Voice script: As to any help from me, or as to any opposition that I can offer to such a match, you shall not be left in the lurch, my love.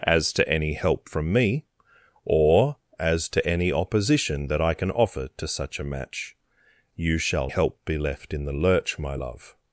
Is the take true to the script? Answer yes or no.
no